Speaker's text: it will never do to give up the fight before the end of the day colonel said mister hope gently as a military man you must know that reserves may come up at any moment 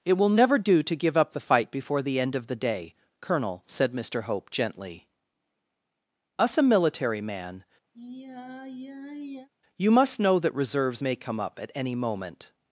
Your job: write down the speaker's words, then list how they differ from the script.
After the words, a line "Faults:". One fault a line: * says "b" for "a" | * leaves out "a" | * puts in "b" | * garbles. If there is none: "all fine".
it will never do to give up the fight before the end of the day colonel said mister hope gently us a military man you must know that reserves may come up at any moment
Faults:
* says "us" for "as"